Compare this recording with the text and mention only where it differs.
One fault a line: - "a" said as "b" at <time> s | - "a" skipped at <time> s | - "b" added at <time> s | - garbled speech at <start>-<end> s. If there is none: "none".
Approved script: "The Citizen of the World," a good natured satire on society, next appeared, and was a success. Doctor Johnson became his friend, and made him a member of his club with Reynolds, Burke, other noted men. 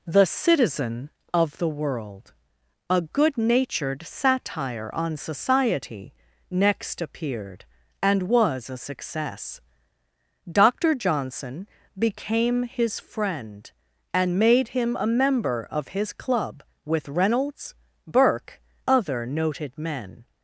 none